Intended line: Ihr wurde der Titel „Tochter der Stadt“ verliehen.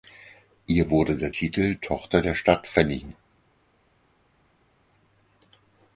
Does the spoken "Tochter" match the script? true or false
true